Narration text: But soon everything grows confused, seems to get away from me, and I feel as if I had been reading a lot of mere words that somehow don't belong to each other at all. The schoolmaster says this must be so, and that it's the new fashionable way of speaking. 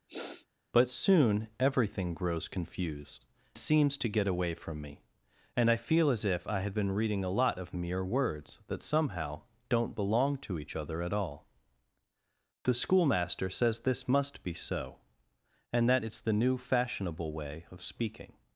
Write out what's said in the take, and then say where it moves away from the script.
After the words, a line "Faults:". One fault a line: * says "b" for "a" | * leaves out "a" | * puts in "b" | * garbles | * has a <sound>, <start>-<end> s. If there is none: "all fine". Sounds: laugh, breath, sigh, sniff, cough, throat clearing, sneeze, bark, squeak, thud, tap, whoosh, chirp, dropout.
But soon everything grows confused, seems to get away from me, and I feel as if I had been reading a lot of mere words that somehow don't belong to each other at all. The schoolmaster says this must be so, and that it's the new fashionable way of speaking.
Faults:
* has a sniff, 0.1-0.5 s